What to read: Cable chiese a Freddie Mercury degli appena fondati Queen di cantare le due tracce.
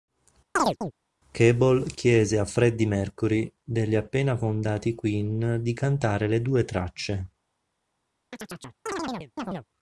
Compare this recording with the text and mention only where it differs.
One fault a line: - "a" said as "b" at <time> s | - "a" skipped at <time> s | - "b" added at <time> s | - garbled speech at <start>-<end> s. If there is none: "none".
none